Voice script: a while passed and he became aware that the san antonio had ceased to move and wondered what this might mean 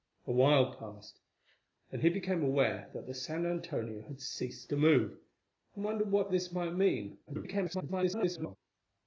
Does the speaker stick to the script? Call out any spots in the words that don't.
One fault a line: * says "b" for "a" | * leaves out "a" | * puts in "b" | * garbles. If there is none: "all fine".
* garbles